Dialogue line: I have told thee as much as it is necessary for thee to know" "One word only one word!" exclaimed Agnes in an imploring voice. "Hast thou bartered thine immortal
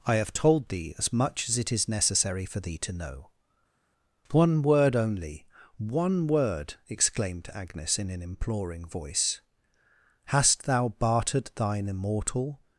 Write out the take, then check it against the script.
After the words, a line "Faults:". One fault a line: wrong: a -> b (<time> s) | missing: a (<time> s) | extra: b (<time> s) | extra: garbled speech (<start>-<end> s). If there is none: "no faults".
I have told thee as much as it is necessary for thee to know" "One word only one word!" exclaimed Agnes in an imploring voice. "Hast thou bartered thine immortal
Faults:
no faults